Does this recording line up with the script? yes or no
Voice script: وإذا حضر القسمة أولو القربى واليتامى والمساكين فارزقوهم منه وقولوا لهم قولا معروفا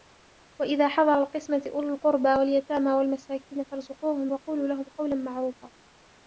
no